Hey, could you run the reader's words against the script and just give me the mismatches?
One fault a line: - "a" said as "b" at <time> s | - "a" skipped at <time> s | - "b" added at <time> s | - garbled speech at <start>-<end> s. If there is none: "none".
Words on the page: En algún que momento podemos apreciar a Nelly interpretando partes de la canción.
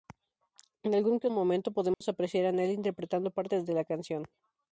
none